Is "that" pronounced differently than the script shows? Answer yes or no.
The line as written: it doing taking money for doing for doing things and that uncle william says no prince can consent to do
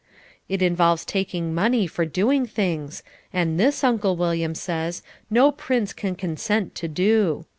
yes